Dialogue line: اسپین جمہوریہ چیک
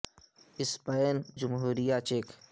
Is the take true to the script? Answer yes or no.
yes